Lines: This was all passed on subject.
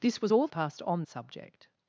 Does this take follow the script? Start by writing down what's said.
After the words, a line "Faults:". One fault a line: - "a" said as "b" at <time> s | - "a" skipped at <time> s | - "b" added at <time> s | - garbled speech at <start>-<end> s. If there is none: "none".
This was all passed on subject.
Faults:
none